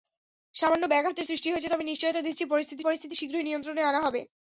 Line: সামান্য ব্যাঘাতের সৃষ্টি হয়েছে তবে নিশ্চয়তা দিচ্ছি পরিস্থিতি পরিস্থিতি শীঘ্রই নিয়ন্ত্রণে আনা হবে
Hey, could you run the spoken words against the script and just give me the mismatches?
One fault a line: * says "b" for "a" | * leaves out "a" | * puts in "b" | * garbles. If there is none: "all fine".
all fine